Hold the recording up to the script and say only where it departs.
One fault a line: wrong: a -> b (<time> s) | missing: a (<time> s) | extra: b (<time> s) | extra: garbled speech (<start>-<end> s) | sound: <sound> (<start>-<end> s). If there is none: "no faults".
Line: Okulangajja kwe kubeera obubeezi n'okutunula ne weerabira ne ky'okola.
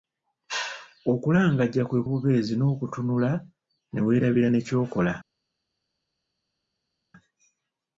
missing: kubeera (2.0 s)